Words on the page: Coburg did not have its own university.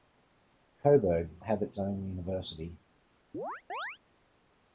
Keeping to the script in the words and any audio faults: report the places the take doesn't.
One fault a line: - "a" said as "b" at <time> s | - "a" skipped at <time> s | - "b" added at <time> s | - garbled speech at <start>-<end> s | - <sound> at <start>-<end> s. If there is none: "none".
- "did not" skipped at 1.4 s
- chirp at 3.3-4.0 s